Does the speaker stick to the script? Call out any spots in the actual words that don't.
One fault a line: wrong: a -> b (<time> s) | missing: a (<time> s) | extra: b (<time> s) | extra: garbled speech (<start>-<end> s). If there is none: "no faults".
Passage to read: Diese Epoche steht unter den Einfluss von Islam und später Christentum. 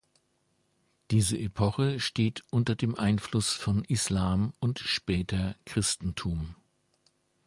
wrong: den -> dem (2.8 s)